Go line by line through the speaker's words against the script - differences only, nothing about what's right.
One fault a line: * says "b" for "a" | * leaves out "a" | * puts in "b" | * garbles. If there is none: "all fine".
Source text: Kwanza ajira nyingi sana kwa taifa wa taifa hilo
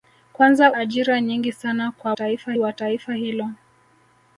all fine